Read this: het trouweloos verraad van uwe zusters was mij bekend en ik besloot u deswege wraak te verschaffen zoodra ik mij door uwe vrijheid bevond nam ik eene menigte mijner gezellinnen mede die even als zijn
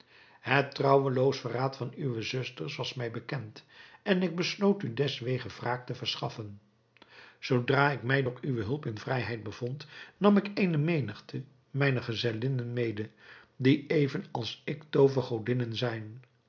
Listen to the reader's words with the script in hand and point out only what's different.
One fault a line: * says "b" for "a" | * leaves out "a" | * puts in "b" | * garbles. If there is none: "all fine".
* puts in "hulp in"
* puts in "ik toovergodinnen"